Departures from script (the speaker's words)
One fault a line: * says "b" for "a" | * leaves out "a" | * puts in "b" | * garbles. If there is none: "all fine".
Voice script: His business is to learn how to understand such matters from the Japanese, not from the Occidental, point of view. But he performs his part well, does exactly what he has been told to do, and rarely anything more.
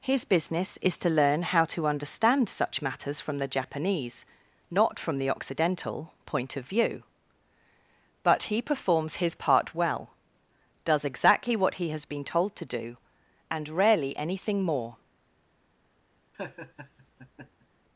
all fine